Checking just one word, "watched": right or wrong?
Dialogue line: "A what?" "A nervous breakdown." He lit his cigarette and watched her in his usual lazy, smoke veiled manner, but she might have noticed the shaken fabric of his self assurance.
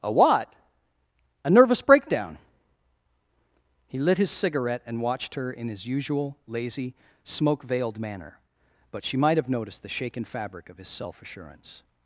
right